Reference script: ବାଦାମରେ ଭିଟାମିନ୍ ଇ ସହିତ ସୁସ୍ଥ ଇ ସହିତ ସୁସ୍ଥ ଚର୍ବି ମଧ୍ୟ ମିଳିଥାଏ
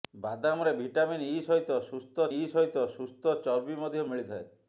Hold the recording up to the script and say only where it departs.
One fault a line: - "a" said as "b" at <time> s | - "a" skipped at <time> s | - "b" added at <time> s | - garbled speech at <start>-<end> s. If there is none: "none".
none